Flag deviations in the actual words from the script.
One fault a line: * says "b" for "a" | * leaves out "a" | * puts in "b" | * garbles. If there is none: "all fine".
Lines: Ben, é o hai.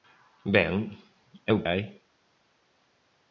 all fine